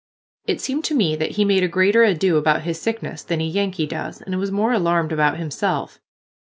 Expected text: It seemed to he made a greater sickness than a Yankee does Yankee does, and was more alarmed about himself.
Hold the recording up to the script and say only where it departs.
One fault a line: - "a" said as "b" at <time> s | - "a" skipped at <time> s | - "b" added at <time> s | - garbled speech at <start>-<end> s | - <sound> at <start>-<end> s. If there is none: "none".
- "me that" added at 0.9 s
- "ado about his" added at 2.0 s
- "Yankee does" skipped at 4.2 s